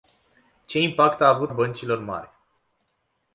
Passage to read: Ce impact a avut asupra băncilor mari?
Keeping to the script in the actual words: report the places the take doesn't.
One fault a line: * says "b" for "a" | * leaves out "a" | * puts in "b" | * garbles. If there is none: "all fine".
* leaves out "asupra"